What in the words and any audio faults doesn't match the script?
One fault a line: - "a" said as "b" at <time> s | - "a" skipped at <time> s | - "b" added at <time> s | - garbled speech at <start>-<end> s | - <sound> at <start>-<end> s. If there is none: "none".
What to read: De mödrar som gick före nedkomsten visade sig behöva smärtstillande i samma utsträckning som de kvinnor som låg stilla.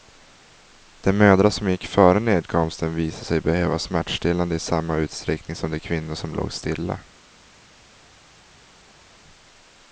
none